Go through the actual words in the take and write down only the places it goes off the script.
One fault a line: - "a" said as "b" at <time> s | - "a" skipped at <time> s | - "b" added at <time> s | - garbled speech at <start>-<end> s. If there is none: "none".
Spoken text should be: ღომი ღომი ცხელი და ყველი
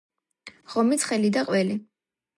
- "ღომი" skipped at 1.0 s